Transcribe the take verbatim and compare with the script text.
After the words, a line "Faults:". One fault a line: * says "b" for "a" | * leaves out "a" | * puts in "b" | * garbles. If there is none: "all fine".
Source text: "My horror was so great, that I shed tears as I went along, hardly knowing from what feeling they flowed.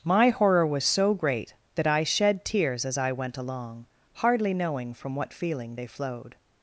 "My horror was so great, that I shed tears as I went along, hardly knowing from what feeling they flowed.
Faults:
all fine